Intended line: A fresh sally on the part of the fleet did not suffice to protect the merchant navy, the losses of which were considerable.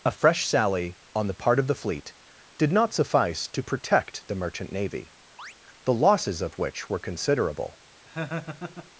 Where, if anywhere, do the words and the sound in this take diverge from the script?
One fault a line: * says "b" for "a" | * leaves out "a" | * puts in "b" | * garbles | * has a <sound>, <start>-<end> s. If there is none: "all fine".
* has a chirp, 5.4-5.5 s
* has a laugh, 8.1-8.9 s